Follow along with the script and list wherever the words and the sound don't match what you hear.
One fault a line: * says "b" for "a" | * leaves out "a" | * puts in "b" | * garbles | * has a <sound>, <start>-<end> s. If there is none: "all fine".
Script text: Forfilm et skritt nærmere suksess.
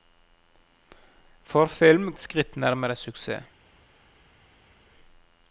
all fine